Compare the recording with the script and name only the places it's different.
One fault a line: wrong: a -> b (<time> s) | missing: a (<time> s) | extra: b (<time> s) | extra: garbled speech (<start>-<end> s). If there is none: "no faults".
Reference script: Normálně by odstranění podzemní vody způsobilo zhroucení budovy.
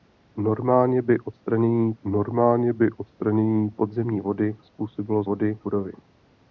extra: normálně by odstranění (2.0 s)
wrong: zhroucení -> vody (5.2 s)